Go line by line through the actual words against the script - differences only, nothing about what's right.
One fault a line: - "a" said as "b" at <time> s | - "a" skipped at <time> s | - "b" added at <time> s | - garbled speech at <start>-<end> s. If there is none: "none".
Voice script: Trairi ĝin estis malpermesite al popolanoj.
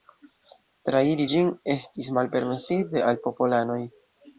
none